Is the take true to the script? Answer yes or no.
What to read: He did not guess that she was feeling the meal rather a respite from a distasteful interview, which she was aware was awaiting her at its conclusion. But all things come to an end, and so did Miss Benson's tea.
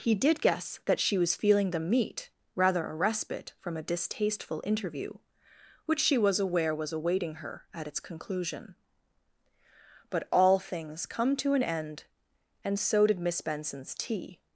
no